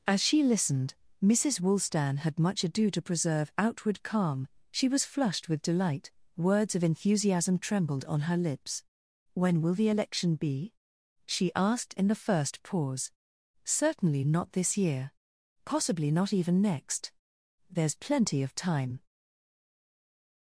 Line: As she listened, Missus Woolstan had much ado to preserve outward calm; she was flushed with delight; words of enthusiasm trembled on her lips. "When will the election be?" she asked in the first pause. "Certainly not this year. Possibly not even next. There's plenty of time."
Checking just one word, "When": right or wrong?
right